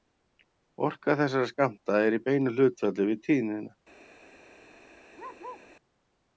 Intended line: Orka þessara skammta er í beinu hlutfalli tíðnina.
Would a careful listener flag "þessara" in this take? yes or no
no